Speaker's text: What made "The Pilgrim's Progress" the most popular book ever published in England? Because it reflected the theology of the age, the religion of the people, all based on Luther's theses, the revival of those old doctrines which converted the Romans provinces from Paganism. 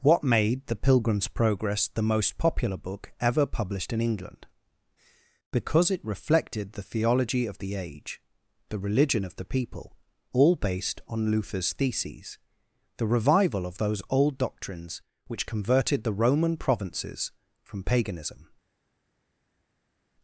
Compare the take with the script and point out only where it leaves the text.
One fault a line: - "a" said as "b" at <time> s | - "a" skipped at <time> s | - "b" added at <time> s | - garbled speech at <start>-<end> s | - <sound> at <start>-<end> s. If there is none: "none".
- "Romans" said as "Roman" at 16.1 s